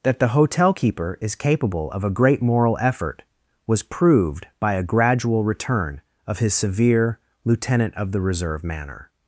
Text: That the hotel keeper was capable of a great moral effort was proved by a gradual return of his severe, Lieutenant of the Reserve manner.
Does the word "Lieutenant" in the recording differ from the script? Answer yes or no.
no